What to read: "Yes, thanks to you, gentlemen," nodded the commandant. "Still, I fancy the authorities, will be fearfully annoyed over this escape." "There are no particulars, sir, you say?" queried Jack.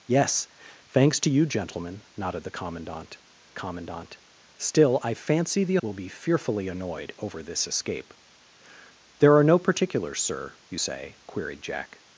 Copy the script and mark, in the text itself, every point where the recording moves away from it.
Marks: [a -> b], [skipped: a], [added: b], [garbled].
"Yes, thanks to you, gentlemen," nodded the commandant. [added: commandant] "Still, I fancy the [skipped: authorities,] will be fearfully annoyed over this escape." "There are no particulars, sir, you say?" queried Jack.